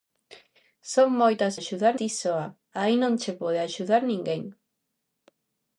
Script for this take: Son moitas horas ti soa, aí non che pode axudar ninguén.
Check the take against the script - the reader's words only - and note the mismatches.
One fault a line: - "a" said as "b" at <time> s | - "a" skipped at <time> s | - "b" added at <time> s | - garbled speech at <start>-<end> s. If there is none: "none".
- "horas" said as "axudar" at 1.6 s